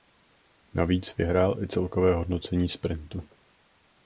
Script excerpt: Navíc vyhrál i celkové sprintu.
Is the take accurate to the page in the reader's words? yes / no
no